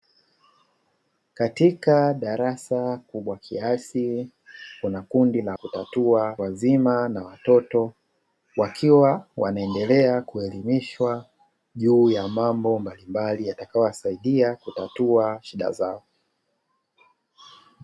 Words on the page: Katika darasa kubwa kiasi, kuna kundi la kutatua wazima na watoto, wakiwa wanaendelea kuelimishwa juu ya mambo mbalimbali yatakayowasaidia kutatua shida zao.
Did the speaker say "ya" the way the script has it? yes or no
yes